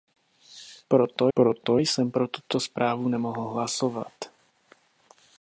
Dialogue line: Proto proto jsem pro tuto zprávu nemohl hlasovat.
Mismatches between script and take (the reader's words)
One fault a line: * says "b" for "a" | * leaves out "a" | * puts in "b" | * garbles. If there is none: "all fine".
all fine